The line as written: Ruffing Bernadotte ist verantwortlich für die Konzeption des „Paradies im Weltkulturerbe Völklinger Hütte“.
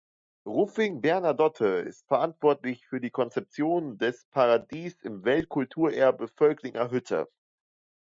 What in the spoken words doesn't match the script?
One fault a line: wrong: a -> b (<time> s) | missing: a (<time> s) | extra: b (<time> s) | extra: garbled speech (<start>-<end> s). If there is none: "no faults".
no faults